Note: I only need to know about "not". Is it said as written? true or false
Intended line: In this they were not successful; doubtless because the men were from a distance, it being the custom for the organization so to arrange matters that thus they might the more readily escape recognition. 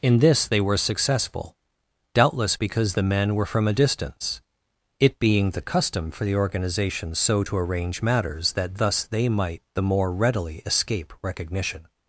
false